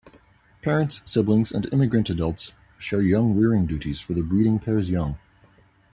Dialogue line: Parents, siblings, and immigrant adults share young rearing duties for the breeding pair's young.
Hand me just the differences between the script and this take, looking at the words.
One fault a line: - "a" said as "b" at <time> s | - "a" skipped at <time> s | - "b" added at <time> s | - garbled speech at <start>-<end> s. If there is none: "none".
none